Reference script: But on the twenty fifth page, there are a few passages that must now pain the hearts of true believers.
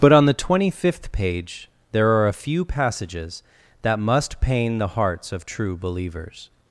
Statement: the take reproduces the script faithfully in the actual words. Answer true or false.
false